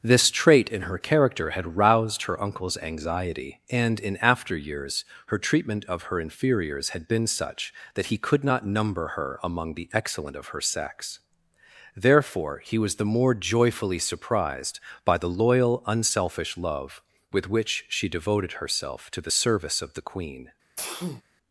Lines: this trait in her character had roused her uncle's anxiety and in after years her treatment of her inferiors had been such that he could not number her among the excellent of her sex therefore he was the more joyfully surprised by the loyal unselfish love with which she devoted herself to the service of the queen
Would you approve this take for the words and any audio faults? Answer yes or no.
no